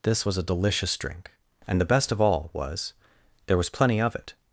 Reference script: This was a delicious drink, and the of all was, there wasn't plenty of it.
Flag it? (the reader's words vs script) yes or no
yes